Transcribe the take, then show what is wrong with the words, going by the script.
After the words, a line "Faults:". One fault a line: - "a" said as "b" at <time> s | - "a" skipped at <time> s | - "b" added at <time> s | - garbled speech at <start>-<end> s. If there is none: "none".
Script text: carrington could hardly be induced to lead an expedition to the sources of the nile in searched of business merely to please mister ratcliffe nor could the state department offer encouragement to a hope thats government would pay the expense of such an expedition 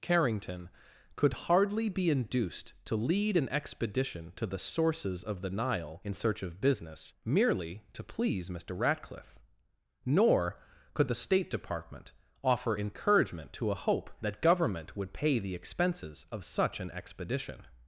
carrington could hardly be induced to lead an expedition to the sources of the nile in search of business merely to please mister ratcliffe nor could the state department offer encouragement to a hope that government would pay the expenses of such an expedition
Faults:
- "searched" said as "search" at 6.1 s
- "thats" said as "that" at 14.2 s
- "expense" said as "expenses" at 15.5 s